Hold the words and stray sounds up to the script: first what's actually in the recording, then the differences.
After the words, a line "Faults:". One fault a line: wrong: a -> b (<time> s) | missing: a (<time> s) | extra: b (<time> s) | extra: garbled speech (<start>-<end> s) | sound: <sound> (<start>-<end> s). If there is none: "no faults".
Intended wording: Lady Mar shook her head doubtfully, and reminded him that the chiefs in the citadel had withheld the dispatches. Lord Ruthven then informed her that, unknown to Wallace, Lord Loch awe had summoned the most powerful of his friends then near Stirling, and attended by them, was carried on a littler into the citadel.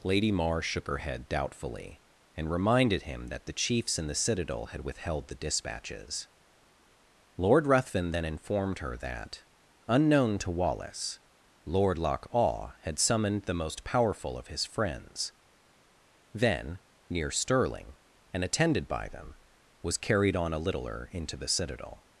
Lady Mar shook her head doubtfully, and reminded him that the chiefs in the citadel had withheld the dispatches. Lord Ruthven then informed her that, unknown to Wallace, Lord Loch awe had summoned the most powerful of his friends then near Stirling, and attended by them, was carried on a littler into the citadel.
Faults:
no faults